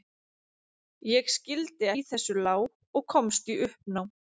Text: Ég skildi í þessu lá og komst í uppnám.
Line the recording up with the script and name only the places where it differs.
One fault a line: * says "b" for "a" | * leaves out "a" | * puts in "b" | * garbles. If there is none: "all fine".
all fine